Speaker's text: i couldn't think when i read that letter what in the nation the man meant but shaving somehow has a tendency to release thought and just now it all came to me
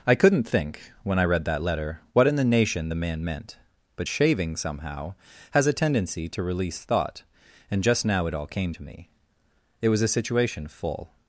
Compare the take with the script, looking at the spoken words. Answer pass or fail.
fail